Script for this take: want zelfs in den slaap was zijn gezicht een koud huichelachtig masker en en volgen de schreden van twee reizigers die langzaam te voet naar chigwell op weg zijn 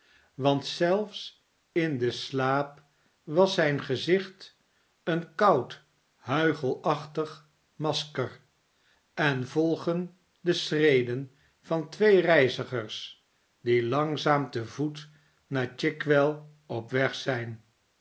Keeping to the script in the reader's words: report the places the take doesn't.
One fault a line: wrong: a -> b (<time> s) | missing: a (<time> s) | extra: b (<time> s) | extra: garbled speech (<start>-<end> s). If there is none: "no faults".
missing: en (9.5 s)